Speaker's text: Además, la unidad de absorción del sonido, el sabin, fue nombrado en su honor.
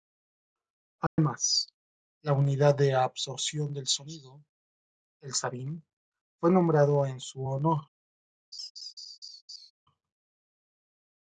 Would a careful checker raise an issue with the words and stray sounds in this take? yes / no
yes